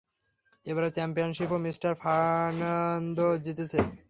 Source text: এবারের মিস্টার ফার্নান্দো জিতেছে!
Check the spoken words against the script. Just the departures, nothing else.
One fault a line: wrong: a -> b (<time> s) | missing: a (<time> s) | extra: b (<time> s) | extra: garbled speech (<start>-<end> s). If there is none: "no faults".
extra: চ্যাম্পিয়নশিপও (0.9 s)